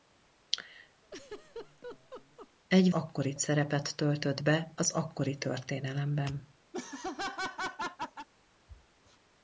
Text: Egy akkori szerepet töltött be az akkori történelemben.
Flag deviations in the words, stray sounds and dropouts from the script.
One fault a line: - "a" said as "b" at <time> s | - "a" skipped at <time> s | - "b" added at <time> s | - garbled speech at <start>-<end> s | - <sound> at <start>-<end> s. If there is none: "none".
- laugh at 1.0-2.5 s
- laugh at 6.7-8.3 s